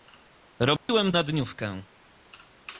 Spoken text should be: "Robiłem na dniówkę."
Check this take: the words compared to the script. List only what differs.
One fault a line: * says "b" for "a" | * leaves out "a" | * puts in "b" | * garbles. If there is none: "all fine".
all fine